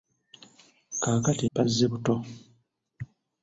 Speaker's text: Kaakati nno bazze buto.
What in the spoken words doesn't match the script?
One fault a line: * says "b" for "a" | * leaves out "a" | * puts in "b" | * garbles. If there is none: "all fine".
* leaves out "nno"